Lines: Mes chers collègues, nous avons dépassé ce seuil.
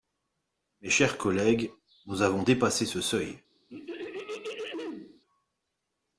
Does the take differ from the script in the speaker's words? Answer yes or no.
no